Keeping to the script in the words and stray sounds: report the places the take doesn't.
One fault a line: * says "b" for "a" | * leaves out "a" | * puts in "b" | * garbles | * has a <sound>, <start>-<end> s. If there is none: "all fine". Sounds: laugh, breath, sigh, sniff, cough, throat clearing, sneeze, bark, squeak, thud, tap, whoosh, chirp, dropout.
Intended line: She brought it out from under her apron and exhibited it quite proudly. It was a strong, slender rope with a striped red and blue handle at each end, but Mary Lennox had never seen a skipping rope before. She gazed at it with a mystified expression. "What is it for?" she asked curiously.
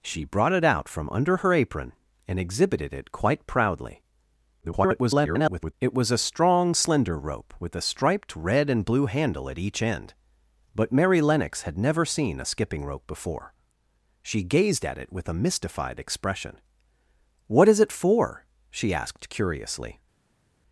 * garbles